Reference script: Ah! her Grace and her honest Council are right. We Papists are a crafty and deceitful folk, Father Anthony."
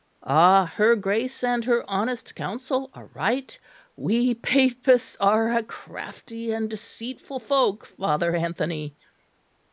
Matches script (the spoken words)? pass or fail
pass